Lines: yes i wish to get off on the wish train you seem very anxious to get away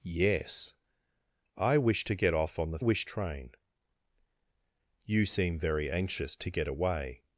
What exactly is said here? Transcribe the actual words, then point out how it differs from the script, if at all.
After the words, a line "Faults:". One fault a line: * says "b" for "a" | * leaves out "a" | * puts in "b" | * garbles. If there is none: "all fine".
yes i wish to get off on the wish train you seem very anxious to get away
Faults:
all fine